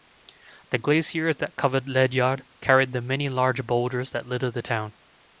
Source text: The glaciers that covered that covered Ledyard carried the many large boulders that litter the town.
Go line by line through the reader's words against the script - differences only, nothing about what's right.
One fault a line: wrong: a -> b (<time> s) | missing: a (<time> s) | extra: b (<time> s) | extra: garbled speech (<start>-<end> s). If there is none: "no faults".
missing: that covered (1.9 s)